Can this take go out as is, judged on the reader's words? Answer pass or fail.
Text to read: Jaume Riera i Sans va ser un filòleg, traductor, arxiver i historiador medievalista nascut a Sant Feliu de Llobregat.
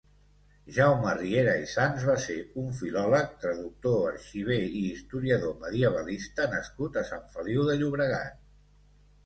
pass